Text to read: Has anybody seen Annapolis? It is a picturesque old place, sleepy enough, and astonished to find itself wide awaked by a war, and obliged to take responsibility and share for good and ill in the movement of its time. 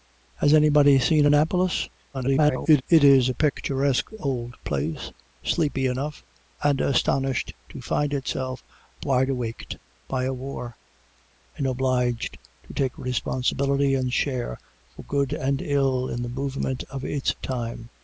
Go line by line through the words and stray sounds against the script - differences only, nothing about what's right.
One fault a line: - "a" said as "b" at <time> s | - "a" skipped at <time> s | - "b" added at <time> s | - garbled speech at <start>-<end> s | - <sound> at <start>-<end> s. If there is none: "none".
- garbled speech at 2.1-2.8 s